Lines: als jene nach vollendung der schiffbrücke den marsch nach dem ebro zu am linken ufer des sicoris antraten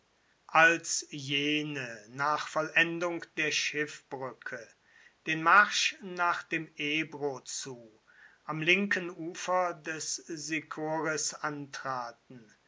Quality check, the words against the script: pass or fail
pass